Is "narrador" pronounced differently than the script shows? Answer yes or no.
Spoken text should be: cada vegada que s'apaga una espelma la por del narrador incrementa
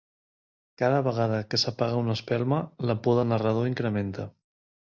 no